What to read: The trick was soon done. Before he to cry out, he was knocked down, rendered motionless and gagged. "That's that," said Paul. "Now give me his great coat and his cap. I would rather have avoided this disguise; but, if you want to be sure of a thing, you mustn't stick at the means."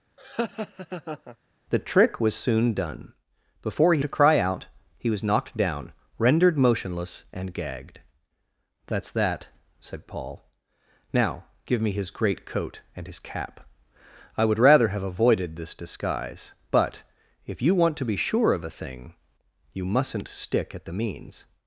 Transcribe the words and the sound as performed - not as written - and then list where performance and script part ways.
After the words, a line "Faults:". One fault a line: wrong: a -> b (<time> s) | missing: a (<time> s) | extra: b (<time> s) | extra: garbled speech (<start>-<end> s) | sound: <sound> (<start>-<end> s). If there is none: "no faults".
The trick was soon done. Before he to cry out, he was knocked down, rendered motionless and gagged. "That's that," said Paul. "Now give me his great coat and his cap. I would rather have avoided this disguise; but, if you want to be sure of a thing, you mustn't stick at the means."
Faults:
sound: laugh (0.2-1.4 s)